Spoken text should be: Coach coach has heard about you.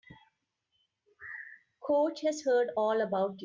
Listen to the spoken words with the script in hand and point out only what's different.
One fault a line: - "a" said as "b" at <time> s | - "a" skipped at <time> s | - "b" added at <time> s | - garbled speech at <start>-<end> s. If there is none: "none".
- "coach" skipped at 2.2 s
- "all" added at 2.8 s